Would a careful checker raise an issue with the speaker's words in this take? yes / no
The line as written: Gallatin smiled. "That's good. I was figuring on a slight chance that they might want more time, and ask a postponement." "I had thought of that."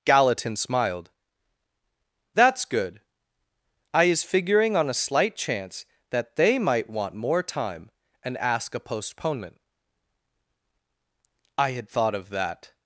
yes